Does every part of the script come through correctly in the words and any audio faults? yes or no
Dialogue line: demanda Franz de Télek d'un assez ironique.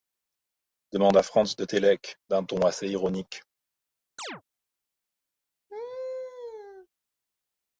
no